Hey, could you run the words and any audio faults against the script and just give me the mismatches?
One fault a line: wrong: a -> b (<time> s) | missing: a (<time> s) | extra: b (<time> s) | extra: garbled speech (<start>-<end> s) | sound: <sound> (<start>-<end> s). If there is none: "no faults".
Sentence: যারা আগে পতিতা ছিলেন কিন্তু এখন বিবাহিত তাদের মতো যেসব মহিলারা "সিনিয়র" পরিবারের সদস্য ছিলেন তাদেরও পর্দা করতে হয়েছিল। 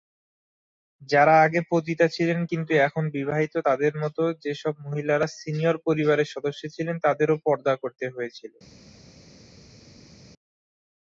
no faults